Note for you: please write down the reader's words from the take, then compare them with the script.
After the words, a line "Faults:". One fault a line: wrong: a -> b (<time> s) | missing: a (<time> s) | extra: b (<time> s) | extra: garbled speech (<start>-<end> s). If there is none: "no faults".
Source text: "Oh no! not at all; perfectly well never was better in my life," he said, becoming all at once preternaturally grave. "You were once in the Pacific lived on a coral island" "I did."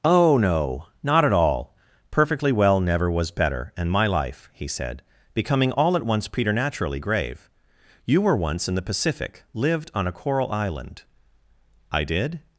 "Oh no! not at all; perfectly well never was better and my life," he said, becoming all at once preternaturally grave. "You were once in the Pacific lived on a coral island" "I did."
Faults:
wrong: in -> and (3.8 s)